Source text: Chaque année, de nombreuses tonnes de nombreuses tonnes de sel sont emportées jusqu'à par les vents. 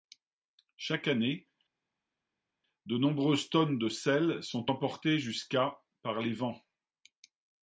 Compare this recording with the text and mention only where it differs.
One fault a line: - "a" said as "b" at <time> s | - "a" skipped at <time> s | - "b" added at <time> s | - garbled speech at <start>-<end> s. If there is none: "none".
- "nombreuses tonnes de" skipped at 3.9 s